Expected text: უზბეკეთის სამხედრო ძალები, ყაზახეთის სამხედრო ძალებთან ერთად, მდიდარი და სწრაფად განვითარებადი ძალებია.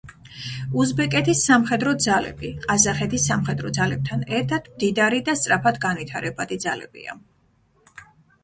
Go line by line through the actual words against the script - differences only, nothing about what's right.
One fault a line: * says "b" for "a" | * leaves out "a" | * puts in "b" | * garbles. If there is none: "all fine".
all fine